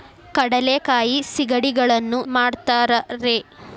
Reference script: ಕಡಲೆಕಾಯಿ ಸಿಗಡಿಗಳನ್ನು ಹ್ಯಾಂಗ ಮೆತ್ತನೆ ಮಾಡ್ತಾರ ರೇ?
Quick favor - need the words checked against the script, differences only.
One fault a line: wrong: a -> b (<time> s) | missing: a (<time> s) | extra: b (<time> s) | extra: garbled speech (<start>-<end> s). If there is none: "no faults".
missing: ಹ್ಯಾಂಗ ಮೆತ್ತನೆ (2.2 s)